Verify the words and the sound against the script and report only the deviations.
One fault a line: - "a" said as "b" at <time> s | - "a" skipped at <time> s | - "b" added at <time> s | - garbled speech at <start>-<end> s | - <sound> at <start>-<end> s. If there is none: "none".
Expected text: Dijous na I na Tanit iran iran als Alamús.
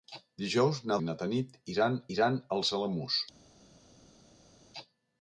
none